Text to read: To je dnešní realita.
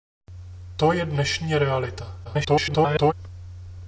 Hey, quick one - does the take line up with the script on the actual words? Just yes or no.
no